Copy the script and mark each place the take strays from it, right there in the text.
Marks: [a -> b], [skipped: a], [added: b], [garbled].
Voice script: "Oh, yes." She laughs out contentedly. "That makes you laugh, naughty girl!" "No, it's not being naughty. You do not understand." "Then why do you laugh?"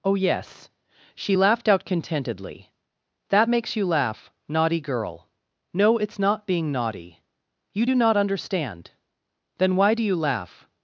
"Oh, yes." She [laughs -> laughed] out contentedly. "That makes you laugh, naughty girl!" "No, it's not being naughty. You do not understand." "Then why do you laugh?"